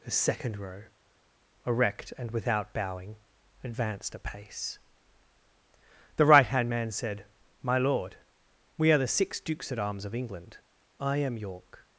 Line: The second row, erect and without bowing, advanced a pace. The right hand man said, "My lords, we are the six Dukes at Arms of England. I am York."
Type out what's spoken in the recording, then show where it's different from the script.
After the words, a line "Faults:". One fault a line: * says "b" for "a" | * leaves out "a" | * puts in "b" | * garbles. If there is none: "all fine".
The second row, erect and without bowing, advanced a pace. The right hand man said, "My lord, we are the six Dukes at Arms of England. I am York."
Faults:
* says "lord" for "lords"